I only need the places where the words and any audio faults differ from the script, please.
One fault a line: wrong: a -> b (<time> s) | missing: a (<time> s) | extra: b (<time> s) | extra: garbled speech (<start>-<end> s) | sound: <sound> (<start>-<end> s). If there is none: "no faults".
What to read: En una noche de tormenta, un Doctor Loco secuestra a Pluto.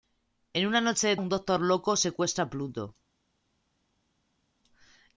missing: tormenta (1.1 s)